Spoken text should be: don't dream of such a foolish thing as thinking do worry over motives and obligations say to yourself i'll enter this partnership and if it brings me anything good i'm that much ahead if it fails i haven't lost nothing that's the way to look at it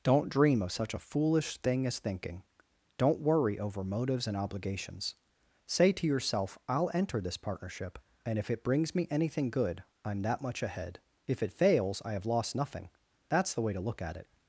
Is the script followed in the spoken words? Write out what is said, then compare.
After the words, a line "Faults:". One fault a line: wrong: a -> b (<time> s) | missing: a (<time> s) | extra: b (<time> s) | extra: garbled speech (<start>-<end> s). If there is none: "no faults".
don't dream of such a foolish thing as thinking don't worry over motives and obligations say to yourself i'll enter this partnership and if it brings me anything good i'm that much ahead if it fails i have lost nothing that's the way to look at it
Faults:
wrong: do -> don't (3.0 s)
wrong: haven't -> have (12.1 s)